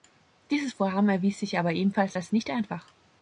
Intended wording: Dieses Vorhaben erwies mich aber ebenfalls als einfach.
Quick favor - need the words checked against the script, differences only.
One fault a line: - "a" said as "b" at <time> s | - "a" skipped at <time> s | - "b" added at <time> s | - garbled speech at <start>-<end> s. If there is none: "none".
- "mich" said as "sich" at 1.4 s
- "nicht" added at 2.3 s